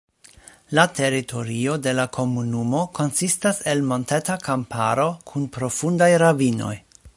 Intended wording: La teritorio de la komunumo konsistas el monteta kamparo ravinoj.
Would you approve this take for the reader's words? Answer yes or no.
no